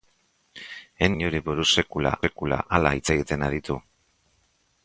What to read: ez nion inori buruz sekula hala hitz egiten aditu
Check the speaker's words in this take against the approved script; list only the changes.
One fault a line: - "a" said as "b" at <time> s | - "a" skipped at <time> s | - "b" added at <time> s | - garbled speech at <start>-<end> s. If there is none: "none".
- "nion" skipped at 1.1 s
- "sekula" added at 2.3 s